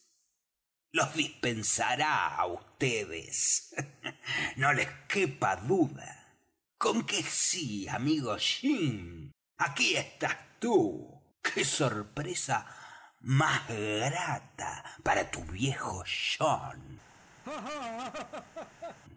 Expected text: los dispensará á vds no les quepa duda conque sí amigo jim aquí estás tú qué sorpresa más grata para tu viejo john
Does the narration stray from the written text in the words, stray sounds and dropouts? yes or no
yes